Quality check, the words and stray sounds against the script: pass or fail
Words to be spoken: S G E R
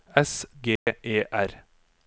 fail